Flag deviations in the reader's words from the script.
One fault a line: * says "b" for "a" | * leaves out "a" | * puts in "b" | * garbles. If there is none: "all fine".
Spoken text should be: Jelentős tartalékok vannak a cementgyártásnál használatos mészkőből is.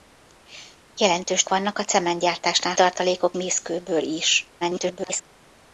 * leaves out "tartalékok"
* says "tartalékok" for "használatos"
* garbles